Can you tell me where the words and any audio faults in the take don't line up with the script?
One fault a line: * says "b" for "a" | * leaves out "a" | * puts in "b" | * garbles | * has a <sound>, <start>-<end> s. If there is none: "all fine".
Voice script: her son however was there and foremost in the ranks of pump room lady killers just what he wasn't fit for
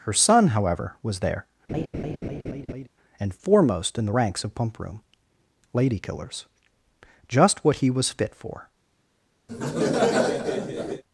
* has a laugh, 1.7-2.9 s
* says "was" for "wasn't"
* has a laugh, 9.5-11.0 s